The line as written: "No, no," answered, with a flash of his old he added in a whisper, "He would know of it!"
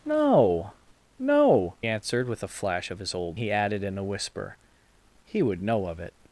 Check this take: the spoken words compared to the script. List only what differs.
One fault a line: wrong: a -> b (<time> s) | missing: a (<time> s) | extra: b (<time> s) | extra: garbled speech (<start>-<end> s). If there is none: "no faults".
no faults